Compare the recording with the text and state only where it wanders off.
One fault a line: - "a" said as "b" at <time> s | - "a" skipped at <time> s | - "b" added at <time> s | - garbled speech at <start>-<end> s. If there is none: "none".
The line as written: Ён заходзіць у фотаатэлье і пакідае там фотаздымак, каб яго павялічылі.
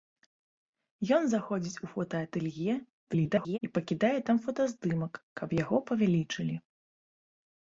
- garbled speech at 3.1-3.6 s